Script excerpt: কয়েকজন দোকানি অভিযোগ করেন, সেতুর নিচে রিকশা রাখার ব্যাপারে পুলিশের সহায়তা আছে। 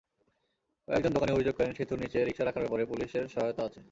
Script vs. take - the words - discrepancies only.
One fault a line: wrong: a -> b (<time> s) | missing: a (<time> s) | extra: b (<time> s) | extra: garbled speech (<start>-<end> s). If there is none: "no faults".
no faults